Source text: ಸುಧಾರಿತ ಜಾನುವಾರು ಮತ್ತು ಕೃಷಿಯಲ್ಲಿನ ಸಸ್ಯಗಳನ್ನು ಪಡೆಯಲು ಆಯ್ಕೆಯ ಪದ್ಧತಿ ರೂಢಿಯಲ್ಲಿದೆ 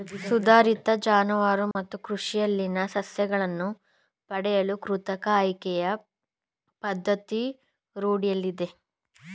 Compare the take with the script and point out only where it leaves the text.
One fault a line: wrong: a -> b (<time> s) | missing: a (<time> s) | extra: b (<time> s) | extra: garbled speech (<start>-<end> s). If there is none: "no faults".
extra: ಕೃತಕ (4.8 s)